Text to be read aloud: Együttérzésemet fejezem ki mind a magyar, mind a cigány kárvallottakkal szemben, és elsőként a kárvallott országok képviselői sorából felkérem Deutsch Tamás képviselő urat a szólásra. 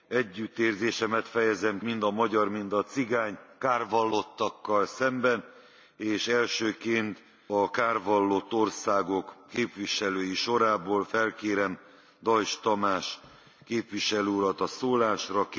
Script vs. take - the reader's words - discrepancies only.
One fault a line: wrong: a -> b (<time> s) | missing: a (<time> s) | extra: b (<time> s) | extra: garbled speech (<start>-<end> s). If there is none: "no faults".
missing: ki (1.8 s)